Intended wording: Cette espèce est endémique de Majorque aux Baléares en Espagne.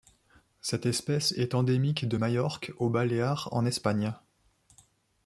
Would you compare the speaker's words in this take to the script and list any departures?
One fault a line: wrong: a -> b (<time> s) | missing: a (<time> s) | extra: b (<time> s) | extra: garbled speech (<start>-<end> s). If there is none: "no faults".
no faults